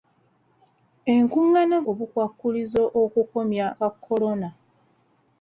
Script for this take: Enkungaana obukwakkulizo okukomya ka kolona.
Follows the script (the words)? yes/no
yes